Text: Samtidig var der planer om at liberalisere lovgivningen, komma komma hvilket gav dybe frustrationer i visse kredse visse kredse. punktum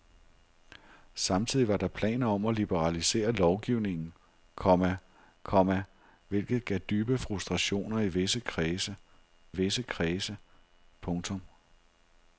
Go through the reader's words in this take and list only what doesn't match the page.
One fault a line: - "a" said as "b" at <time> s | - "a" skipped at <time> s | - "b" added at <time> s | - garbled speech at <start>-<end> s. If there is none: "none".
none